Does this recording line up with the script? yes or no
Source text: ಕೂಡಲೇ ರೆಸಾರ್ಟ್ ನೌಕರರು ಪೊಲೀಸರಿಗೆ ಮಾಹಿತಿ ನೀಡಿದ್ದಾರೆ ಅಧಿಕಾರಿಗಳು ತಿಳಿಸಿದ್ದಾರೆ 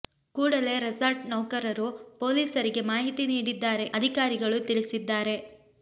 yes